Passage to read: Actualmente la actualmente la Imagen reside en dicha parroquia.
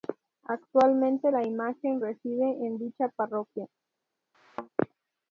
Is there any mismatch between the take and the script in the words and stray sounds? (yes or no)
yes